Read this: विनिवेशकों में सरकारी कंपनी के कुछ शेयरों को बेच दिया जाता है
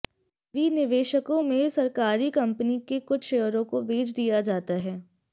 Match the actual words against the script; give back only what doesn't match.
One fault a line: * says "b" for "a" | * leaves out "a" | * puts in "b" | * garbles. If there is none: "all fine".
all fine